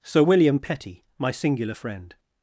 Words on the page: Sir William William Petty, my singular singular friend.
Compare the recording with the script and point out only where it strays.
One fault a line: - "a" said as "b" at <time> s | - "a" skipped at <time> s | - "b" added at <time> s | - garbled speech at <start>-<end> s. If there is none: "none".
- "William" skipped at 0.6 s
- "singular" skipped at 1.8 s